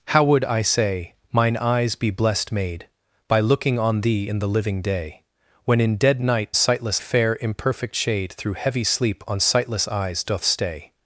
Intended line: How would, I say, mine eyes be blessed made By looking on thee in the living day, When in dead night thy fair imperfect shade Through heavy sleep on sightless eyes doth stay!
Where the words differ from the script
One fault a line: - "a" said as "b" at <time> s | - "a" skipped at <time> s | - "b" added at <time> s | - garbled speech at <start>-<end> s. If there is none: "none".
- "thy" said as "sightless" at 6.5 s